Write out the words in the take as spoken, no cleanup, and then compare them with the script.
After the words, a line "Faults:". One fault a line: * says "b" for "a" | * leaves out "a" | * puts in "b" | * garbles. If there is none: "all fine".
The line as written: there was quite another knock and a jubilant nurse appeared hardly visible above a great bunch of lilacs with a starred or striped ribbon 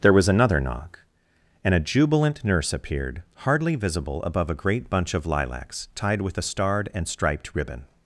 there was another knock and a jubilant nurse appeared hardly visible above a great bunch of lilacs tied with a starred and striped ribbon
Faults:
* leaves out "quite"
* puts in "tied"
* says "and" for "or"